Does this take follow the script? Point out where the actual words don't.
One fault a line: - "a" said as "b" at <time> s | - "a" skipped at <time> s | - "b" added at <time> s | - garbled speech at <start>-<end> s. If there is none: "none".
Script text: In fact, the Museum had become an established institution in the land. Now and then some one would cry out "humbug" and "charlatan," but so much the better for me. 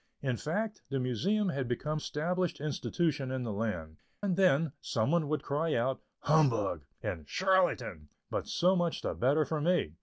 - "an" skipped at 2.0 s
- "Now" skipped at 4.0 s